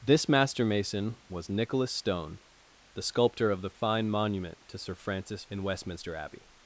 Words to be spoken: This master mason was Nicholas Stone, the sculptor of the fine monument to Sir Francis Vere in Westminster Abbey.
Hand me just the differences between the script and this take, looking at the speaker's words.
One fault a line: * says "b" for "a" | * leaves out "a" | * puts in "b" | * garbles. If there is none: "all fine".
* leaves out "Vere"